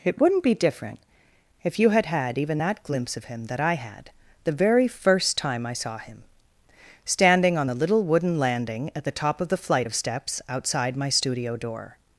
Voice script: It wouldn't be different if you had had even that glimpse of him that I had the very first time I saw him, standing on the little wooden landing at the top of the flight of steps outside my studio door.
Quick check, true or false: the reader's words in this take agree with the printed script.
true